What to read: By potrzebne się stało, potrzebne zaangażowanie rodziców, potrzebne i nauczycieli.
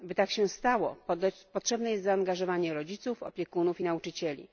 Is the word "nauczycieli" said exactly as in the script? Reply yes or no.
yes